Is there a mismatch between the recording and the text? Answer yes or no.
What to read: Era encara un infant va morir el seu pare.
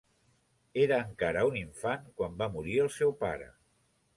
yes